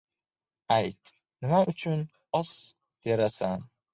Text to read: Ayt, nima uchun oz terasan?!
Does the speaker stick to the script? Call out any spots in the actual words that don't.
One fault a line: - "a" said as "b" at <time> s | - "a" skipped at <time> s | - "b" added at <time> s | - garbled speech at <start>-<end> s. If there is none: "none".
none